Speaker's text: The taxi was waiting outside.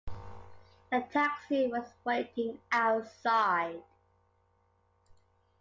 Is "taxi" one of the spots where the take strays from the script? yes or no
no